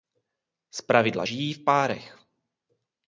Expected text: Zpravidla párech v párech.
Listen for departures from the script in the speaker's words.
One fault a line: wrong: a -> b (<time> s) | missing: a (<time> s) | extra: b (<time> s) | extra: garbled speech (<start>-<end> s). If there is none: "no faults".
wrong: párech -> žijí (1.2 s)